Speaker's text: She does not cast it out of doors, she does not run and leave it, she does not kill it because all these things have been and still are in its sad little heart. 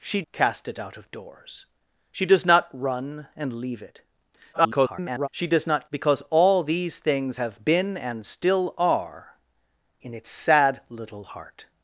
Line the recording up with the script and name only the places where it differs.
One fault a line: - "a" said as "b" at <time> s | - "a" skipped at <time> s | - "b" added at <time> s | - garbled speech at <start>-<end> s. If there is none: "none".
- "does not" skipped at 0.2 s
- garbled speech at 4.5-5.3 s
- "kill it" skipped at 5.9 s